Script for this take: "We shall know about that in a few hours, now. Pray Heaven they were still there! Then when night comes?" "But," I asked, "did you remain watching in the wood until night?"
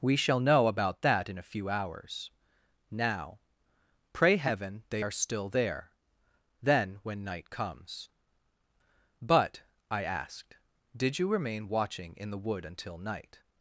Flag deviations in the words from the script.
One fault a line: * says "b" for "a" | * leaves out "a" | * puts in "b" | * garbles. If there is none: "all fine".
* says "are" for "were"